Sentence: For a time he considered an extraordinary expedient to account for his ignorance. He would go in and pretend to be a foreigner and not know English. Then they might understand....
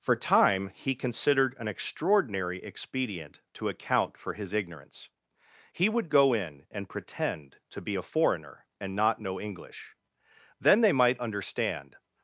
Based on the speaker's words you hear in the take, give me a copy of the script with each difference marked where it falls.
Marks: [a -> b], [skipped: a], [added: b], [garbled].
For [skipped: a] time he considered an extraordinary expedient to account for his ignorance. He would go in and pretend to be a foreigner and not know English. Then they might understand....